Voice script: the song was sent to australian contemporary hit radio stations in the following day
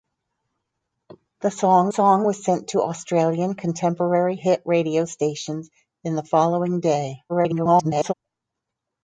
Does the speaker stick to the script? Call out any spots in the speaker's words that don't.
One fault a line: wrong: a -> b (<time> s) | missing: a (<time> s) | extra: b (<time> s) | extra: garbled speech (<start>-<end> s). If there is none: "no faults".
extra: song (1.9 s)
extra: garbled speech (7.3-8.1 s)